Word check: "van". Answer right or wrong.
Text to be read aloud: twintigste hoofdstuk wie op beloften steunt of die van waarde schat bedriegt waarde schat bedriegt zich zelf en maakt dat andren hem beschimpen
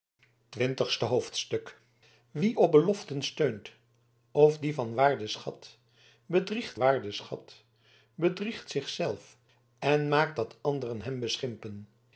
right